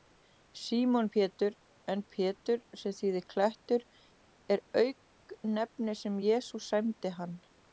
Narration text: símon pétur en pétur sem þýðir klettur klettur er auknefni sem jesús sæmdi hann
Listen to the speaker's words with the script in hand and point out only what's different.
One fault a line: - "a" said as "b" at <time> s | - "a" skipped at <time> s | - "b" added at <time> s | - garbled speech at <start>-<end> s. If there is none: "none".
- "klettur" skipped at 3.9 s